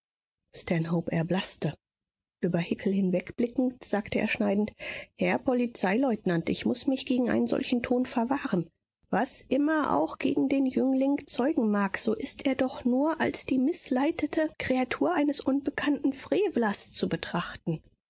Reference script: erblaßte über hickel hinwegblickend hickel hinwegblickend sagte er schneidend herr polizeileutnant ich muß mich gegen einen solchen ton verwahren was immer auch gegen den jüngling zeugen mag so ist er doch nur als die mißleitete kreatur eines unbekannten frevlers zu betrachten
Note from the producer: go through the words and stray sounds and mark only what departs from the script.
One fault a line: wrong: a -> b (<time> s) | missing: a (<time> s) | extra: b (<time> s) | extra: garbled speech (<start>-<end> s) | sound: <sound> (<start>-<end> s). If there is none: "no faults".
missing: hickel hinwegblickend (3.8 s)